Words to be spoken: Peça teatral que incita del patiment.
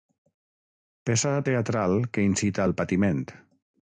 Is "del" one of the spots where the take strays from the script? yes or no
yes